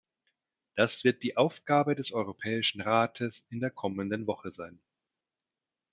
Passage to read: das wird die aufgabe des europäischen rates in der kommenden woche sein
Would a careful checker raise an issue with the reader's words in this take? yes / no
no